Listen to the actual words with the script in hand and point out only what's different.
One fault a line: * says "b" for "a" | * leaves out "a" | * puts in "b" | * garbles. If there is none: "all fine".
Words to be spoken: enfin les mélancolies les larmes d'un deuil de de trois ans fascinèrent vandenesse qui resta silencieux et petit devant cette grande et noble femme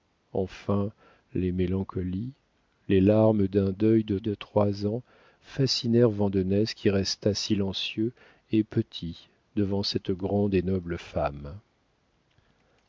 all fine